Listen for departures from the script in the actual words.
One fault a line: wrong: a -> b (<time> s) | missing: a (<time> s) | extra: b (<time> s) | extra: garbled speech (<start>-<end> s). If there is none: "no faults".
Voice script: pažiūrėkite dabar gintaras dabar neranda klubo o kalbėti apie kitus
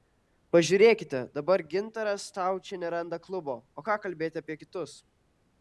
wrong: dabar -> staučė (2.3 s)
extra: ką (3.9 s)